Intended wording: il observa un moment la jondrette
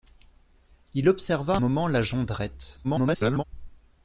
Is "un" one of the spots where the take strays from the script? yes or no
yes